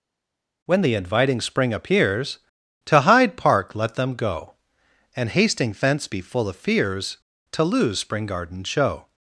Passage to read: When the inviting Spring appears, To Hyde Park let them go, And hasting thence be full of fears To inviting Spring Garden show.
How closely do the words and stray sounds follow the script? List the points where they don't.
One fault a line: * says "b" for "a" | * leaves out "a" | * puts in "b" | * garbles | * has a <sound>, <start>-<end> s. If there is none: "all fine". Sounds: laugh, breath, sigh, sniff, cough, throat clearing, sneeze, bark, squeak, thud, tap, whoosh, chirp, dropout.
* says "lose" for "inviting"